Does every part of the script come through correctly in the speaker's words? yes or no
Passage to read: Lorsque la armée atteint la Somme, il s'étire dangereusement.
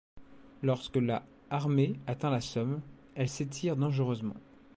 no